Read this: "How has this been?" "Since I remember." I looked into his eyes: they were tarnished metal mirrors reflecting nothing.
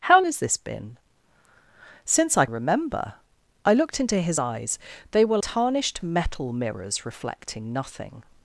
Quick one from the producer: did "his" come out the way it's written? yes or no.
yes